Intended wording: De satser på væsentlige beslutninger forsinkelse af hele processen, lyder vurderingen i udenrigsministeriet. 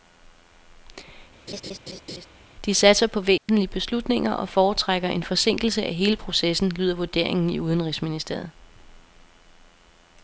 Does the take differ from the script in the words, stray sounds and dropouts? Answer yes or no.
yes